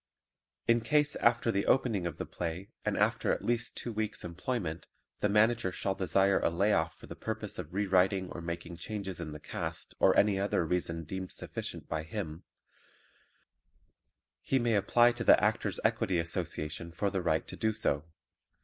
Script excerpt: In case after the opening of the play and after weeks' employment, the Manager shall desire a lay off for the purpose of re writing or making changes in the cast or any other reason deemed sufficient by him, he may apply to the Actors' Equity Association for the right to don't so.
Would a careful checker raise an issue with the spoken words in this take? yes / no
yes